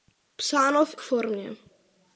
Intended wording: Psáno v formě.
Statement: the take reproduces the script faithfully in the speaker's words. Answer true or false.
true